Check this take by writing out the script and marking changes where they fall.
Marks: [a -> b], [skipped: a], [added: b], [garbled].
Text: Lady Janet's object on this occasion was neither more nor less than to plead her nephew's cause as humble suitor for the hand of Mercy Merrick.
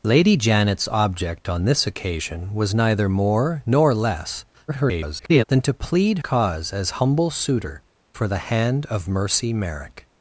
Lady Janet's object on this occasion was neither more nor less [garbled] than to plead [skipped: her nephew's] cause as humble suitor for the hand of Mercy Merrick.